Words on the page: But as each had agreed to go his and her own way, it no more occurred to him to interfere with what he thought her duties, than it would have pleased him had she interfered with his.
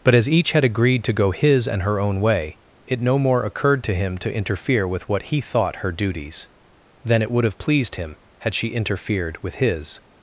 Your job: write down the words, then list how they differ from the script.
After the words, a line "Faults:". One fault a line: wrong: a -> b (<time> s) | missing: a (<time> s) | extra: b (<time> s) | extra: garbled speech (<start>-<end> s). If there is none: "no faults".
But as each had agreed to go his and her own way, it no more occurred to him to interfere with what he thought her duties, than it would have pleased him had she interfered with his.
Faults:
no faults